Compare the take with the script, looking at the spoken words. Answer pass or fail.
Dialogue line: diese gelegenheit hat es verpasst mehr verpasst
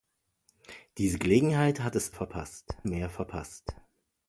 pass